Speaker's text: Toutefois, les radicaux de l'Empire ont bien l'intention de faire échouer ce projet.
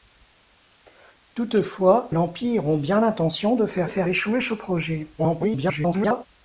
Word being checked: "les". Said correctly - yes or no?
no